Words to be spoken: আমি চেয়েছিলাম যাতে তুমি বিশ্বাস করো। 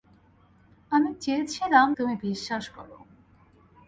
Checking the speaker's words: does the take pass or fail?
fail